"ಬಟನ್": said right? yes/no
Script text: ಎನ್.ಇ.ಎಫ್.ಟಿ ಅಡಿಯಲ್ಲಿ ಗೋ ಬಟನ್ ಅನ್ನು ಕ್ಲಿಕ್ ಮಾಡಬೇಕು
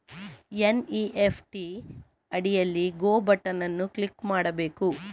yes